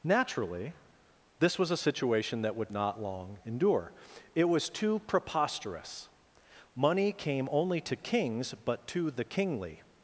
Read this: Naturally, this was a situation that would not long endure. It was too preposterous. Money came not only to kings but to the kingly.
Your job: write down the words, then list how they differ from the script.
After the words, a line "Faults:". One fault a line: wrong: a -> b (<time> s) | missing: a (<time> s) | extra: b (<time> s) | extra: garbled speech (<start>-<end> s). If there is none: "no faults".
Naturally, this was a situation that would not long endure. It was too preposterous. Money came only to kings but to the kingly.
Faults:
missing: not (7.5 s)